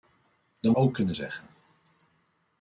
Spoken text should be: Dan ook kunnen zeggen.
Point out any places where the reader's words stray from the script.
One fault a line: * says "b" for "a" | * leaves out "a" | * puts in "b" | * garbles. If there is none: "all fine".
all fine